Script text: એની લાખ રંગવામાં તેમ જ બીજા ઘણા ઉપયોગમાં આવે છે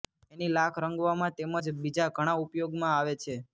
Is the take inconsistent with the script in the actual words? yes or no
no